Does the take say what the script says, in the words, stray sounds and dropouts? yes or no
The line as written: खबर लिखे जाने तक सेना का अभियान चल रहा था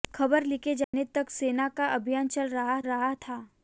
no